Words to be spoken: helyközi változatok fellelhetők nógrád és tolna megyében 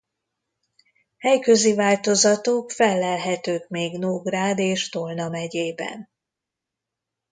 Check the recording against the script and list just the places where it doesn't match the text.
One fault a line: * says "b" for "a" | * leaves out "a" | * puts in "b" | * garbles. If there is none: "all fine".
* puts in "még"